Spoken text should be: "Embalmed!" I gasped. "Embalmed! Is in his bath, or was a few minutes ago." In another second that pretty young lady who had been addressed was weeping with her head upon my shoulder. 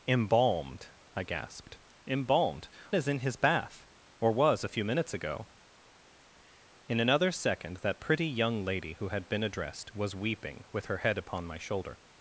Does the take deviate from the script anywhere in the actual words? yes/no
no